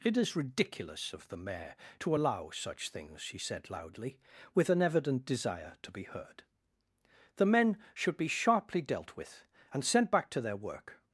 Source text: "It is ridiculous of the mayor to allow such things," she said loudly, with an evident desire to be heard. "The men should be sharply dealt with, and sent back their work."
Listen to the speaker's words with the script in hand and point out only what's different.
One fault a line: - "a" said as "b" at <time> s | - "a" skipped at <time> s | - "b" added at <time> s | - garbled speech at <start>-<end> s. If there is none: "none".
- "to" added at 10.3 s